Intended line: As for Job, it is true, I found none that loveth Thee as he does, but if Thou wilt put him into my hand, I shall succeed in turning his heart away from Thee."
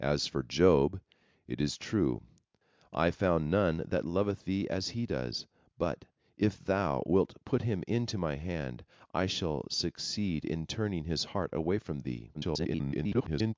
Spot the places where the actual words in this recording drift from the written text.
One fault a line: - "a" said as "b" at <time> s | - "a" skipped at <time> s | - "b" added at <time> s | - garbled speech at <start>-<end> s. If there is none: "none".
- garbled speech at 12.3-13.5 s